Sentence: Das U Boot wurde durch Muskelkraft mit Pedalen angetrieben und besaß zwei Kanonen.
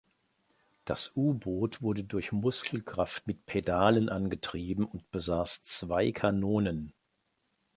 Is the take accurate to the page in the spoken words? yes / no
yes